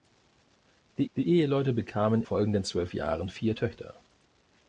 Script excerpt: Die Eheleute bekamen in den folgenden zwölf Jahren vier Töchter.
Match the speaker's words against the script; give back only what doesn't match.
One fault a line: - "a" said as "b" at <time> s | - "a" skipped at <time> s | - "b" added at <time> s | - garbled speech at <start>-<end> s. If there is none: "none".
- "die" added at 1.2 s
- "in den" skipped at 2.2 s